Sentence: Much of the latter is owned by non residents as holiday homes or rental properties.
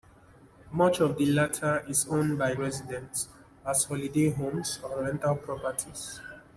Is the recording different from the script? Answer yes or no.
yes